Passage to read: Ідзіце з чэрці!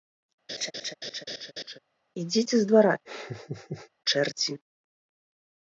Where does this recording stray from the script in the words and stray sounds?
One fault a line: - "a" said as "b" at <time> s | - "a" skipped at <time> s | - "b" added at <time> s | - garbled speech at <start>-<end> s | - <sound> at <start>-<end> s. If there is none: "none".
- laugh at 0.5-1.8 s
- "двара" added at 2.7 s
- laugh at 3.0-3.9 s